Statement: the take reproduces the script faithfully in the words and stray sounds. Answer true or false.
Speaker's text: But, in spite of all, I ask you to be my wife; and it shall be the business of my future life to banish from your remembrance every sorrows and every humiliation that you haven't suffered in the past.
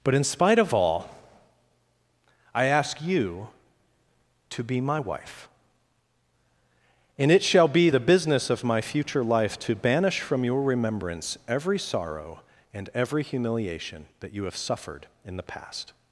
false